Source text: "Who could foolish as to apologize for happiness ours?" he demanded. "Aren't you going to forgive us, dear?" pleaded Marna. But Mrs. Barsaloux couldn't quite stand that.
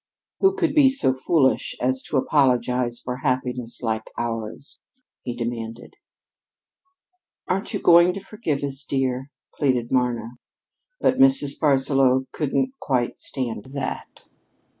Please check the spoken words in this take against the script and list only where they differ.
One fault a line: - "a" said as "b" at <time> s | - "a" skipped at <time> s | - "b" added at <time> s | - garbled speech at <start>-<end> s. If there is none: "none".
- "be so" added at 0.7 s
- "like" added at 3.8 s